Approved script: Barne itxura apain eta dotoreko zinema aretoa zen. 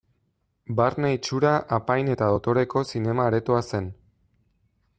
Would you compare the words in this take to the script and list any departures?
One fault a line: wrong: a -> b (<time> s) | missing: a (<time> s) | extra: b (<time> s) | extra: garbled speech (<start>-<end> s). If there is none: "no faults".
no faults